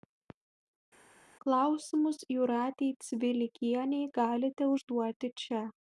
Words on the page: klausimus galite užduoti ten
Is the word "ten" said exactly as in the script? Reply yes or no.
no